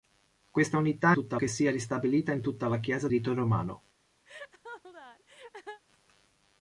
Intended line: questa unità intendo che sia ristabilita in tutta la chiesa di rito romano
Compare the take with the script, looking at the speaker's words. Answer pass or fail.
fail